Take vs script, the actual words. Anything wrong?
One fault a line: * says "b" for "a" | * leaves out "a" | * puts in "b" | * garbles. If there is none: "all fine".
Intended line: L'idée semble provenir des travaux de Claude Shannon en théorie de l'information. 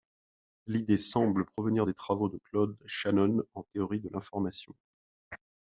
all fine